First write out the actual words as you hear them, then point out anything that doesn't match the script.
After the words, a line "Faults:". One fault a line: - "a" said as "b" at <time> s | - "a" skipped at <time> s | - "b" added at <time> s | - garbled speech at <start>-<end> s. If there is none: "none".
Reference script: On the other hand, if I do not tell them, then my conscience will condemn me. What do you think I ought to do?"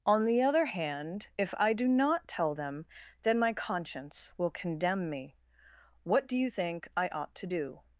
On the other hand, if I do not tell them, then my conscience will condemn me. What do you think I ought to do?"
Faults:
none